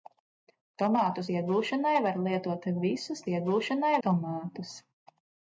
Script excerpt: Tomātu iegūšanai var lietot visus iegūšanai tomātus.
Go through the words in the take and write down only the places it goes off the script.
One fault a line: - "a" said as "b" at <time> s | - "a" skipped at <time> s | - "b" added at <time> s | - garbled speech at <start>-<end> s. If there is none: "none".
none